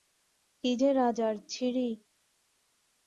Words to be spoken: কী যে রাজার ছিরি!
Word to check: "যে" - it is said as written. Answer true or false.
true